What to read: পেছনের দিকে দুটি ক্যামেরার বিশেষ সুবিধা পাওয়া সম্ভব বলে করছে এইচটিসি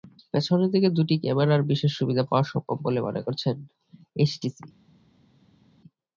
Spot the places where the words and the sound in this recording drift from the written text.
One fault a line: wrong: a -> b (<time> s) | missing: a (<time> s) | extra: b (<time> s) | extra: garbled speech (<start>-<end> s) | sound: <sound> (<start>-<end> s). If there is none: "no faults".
extra: মনে (3.1 s)